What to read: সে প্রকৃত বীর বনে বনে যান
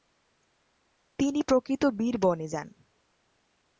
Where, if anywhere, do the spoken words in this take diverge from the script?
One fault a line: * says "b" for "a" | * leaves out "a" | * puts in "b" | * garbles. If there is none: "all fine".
* says "তিনি" for "সে"
* leaves out "বনে"